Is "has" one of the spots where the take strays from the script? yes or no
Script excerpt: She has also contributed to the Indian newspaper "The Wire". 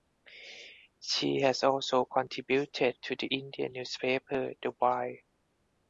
no